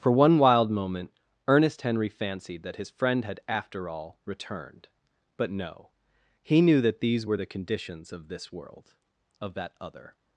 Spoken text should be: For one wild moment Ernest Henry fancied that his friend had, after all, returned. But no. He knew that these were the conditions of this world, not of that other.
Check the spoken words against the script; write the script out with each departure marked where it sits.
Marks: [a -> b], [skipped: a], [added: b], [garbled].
For one wild moment Ernest Henry fancied that his friend had, after all, returned. But no. He knew that these were the conditions of this world, [skipped: not] of that other.